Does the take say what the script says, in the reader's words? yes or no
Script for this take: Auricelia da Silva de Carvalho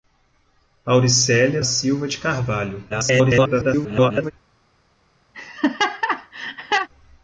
no